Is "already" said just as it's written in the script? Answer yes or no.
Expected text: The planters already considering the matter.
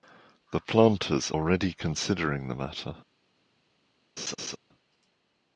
yes